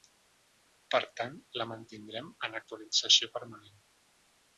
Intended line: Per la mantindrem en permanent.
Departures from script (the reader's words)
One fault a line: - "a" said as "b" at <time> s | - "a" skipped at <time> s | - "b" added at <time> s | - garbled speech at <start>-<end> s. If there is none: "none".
- "tant" added at 1.2 s
- "actualització" added at 2.6 s